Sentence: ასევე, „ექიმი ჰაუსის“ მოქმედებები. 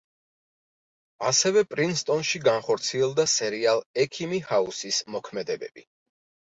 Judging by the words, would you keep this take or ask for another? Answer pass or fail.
fail